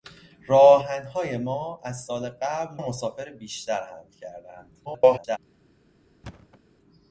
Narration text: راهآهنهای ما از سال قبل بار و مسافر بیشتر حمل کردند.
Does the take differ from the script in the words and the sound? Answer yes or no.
yes